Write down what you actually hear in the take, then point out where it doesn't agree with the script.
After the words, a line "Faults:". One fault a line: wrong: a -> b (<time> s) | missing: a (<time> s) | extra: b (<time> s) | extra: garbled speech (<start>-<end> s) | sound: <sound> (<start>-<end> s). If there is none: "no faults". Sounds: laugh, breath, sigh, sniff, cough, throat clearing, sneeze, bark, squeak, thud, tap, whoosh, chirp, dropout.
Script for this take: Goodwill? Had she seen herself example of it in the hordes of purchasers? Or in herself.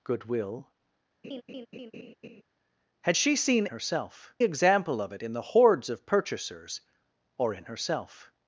Goodwill? Had she seen herself example of it in the hordes of purchasers? Or in herself.
Faults:
sound: laugh (1.2-2.4 s)